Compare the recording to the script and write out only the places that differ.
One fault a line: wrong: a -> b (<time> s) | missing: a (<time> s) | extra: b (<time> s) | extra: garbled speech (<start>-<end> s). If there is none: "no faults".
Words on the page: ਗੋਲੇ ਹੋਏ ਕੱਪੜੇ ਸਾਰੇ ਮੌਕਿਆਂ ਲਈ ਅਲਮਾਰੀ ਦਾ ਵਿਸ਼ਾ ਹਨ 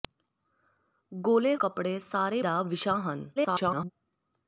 missing: ਹੋਏ (1.6 s)
missing: ਮੌਕਿਆਂ ਲਈ ਅਲਮਾਰੀ (2.4 s)
extra: garbled speech (3.4-3.9 s)